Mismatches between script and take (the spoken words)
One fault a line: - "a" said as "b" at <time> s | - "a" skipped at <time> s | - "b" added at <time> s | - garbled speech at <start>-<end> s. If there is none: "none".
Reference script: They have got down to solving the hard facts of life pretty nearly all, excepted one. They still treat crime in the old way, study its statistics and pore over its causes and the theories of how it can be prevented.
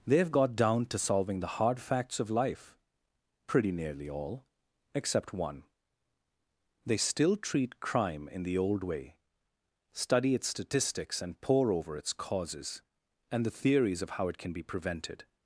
- "excepted" said as "except" at 5.0 s